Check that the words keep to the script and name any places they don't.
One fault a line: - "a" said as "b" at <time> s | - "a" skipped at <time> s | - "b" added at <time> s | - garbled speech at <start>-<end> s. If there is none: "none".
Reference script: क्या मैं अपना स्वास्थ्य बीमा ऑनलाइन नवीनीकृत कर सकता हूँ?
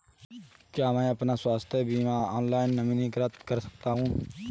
none